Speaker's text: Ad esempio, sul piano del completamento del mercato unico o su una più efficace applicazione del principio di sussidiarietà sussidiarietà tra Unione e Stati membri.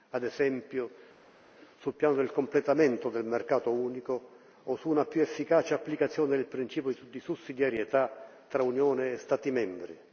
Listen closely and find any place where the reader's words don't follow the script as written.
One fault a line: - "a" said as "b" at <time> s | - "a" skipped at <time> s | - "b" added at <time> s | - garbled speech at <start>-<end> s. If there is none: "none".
- "sussidiarietà" skipped at 8.3 s